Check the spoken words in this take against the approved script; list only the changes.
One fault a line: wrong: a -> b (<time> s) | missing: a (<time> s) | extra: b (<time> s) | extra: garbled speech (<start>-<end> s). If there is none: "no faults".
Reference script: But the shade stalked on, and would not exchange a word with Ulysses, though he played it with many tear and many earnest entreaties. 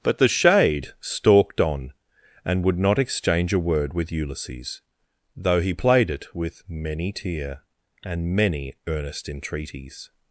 no faults